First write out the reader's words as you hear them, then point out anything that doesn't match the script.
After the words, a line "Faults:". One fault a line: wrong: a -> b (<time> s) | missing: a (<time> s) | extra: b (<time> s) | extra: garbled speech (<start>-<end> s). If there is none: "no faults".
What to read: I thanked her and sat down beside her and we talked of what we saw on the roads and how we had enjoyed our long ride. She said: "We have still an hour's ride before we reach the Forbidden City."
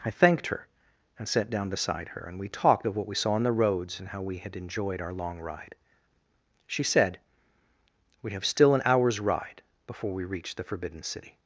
I thanked her and sat down beside her and we talked of what we saw on the roads and how we had enjoyed our long ride. She said: "We have still an hour's ride before we reach the Forbidden City."
Faults:
no faults